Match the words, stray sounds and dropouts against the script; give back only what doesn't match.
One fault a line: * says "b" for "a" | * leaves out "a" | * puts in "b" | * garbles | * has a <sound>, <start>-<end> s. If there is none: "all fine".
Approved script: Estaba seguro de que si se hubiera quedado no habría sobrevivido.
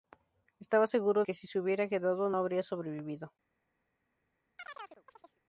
* leaves out "de"
* leaves out "no"
* has a chirp, 4.6-5.4 s